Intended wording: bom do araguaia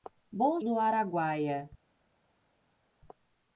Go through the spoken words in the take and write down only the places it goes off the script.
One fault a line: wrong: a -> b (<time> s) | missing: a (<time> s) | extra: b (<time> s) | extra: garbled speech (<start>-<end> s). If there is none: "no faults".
no faults